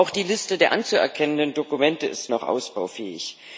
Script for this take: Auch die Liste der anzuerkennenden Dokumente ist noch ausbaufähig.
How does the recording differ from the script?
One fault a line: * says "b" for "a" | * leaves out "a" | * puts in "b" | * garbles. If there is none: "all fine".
all fine